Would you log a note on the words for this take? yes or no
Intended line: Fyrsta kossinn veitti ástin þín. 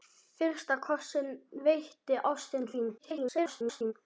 yes